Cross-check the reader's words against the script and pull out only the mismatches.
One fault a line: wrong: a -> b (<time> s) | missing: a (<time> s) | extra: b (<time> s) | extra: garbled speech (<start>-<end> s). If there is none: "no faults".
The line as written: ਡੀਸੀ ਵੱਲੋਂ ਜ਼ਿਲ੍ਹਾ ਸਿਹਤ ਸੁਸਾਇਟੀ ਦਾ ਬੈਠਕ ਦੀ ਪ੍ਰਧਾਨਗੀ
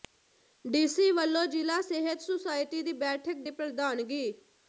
wrong: ਦਾ -> ਦੀ (2.8 s)